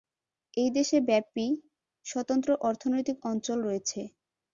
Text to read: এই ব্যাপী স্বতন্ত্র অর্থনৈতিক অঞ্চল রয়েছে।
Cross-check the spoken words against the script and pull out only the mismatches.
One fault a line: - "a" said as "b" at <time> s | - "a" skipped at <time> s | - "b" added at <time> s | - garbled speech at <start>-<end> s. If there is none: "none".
- "দেশে" added at 0.8 s